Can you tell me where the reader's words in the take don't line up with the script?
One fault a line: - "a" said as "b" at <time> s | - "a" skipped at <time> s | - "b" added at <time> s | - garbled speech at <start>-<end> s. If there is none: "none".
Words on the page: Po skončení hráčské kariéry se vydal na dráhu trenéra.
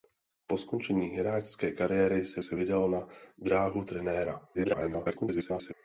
- "se" added at 2.4 s
- garbled speech at 4.5-5.7 s